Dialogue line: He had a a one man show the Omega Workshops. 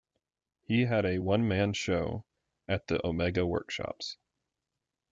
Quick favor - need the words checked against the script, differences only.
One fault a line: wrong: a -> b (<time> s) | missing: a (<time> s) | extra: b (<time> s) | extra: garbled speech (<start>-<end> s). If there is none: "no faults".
missing: a (1.2 s)
extra: at (2.7 s)